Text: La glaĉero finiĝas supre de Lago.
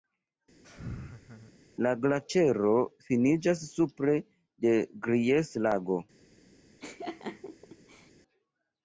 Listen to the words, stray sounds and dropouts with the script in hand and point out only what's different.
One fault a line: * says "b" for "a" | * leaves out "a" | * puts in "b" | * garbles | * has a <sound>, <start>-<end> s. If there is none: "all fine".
* has a laugh, 0.6-1.6 s
* puts in "Gries"
* has a laugh, 6.8-8.1 s